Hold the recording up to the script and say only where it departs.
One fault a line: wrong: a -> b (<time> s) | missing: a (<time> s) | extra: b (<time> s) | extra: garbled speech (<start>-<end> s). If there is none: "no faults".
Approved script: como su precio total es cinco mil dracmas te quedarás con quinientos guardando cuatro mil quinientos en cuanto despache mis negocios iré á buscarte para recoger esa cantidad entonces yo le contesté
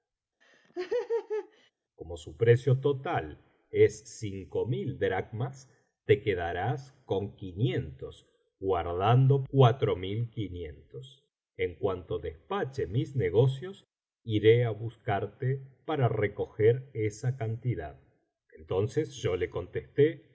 no faults